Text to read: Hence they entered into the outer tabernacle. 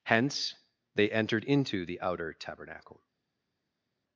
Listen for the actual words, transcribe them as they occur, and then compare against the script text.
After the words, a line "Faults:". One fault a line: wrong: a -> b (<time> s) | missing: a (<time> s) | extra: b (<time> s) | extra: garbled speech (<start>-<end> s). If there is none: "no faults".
Hence they entered into the outer tabernacle.
Faults:
no faults